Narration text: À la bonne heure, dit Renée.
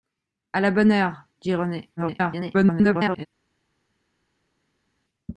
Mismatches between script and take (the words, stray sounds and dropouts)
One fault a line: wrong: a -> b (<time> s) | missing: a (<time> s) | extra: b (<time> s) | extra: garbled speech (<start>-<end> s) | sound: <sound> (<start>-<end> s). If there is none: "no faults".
extra: garbled speech (2.0-3.3 s)